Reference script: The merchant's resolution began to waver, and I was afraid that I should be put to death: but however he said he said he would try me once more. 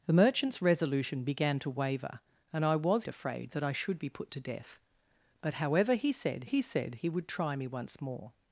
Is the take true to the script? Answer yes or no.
yes